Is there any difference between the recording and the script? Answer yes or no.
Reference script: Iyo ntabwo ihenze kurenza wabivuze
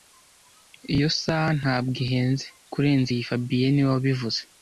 yes